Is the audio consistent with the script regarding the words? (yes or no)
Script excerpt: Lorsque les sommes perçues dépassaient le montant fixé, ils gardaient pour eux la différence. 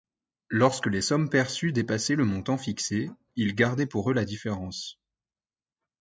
yes